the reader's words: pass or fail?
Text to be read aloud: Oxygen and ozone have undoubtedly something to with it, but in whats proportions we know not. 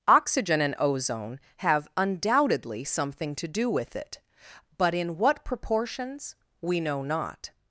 fail